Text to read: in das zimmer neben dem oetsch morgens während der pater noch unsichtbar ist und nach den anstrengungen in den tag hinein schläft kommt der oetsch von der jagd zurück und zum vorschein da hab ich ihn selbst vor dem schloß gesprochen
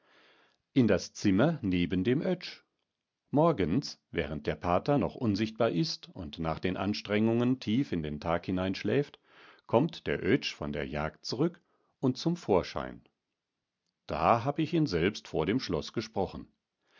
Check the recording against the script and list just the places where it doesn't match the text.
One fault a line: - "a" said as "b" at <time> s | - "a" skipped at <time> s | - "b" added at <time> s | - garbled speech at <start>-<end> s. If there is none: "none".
- "tief" added at 7.6 s